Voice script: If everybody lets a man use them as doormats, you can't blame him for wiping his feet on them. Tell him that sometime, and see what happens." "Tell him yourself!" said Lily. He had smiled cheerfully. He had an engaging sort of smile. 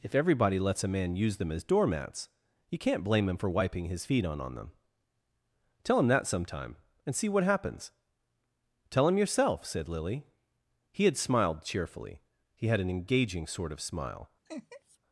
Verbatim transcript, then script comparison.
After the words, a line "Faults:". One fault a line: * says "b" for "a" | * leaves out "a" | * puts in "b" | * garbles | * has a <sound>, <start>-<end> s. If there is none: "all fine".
If everybody lets a man use them as doormats, you can't blame him for wiping his feet on on them. Tell him that sometime, and see what happens." "Tell him yourself!" said Lily. He had smiled cheerfully. He had an engaging sort of smile.
Faults:
* puts in "on"
* has a laugh, 14.5-15.0 s